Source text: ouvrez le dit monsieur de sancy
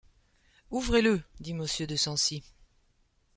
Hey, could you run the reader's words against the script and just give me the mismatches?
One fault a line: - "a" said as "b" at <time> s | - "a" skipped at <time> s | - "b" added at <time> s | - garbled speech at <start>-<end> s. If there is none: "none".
none